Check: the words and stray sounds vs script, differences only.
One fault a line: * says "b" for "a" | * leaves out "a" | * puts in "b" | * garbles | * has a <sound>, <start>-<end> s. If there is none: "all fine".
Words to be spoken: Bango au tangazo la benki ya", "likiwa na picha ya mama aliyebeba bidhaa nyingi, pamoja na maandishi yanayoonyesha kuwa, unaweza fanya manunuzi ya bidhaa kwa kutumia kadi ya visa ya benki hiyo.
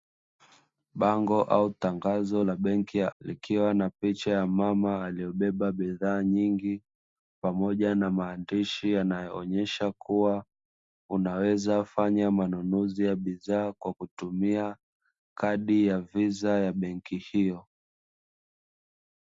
all fine